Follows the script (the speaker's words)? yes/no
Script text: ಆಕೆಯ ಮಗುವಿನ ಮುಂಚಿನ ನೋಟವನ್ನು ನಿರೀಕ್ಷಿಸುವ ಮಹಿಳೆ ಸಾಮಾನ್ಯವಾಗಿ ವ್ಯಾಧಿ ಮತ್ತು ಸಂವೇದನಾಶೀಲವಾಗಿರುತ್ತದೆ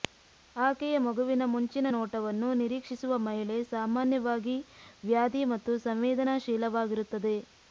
yes